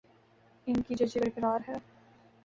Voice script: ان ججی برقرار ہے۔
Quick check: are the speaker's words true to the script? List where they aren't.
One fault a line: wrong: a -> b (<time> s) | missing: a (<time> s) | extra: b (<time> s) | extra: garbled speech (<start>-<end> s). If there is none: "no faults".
extra: کی (0.8 s)